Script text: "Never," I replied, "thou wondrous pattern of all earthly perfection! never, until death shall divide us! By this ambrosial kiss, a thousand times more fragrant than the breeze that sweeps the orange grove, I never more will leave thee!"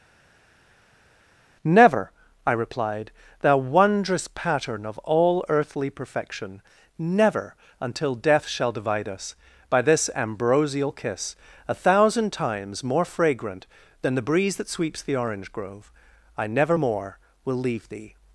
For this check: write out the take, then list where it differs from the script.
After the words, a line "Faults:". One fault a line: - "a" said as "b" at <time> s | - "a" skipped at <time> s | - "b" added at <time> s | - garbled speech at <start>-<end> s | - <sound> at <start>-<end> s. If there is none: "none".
"Never," I replied, "thou wondrous pattern of all earthly perfection! never, until death shall divide us! By this ambrosial kiss, a thousand times more fragrant than the breeze that sweeps the orange grove, I never more will leave thee!"
Faults:
none